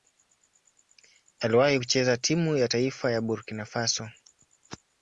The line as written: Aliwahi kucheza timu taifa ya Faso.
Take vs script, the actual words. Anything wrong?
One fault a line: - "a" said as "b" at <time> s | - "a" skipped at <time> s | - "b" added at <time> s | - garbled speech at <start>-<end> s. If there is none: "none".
- "ya" added at 2.6 s
- "Burkina" added at 3.2 s